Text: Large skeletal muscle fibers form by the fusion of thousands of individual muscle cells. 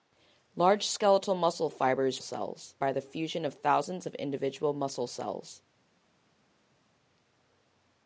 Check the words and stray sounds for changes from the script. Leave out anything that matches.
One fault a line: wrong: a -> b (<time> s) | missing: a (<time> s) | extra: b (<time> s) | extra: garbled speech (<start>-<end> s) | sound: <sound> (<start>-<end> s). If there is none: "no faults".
wrong: form -> cells (2.2 s)